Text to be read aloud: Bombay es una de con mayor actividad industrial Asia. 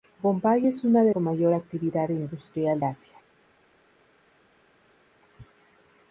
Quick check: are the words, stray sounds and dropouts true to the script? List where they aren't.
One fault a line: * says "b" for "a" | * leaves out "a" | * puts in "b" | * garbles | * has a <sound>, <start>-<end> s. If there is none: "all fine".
all fine